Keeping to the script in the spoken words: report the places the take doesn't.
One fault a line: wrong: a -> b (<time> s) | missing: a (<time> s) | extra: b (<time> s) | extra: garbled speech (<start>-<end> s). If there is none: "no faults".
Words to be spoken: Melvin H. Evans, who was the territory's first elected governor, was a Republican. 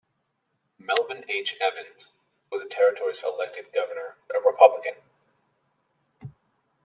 missing: who (2.1 s)
missing: first (3.2 s)
missing: was (4.1 s)